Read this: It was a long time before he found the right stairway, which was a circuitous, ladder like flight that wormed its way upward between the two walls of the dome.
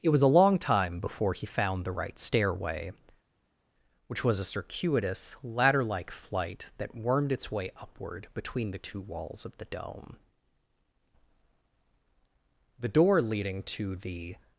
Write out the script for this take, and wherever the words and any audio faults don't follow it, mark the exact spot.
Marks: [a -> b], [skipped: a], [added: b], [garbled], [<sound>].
It was a long time before he found the right stairway, which was a circuitous, ladder like flight that wormed its way upward between the two walls of the dome. [added: The door leading to the]